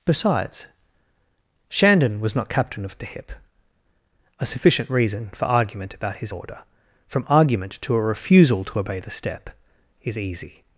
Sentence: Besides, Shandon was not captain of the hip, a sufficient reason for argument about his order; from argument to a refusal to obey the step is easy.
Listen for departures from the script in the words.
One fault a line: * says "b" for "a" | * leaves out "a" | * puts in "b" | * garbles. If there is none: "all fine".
all fine